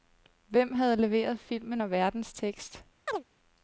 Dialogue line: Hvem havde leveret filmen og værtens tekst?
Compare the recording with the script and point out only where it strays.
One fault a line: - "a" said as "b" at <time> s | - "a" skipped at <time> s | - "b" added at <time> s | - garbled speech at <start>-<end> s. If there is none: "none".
none